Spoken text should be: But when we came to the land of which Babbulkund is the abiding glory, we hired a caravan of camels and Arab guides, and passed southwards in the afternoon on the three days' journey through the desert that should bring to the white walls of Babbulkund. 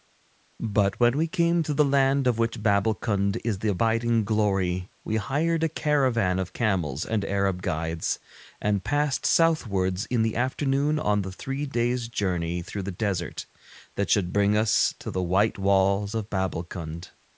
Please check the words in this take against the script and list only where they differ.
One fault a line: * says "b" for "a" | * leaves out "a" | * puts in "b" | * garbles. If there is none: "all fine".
* puts in "us"